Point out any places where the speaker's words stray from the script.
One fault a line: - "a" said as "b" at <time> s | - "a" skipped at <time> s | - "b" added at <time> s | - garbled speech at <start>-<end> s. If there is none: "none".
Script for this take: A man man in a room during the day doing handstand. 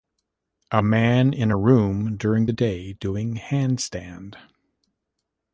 - "man" skipped at 1.3 s